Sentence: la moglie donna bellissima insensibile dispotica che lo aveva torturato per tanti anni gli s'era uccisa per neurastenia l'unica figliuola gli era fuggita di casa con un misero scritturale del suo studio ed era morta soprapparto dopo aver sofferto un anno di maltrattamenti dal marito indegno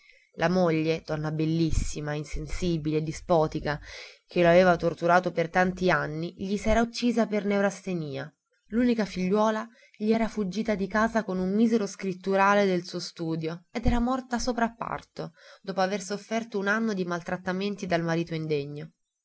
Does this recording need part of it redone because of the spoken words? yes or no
no